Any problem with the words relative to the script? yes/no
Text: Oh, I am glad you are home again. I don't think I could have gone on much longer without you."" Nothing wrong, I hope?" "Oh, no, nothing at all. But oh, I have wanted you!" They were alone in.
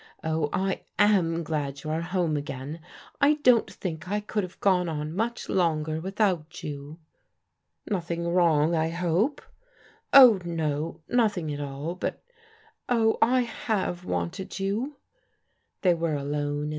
no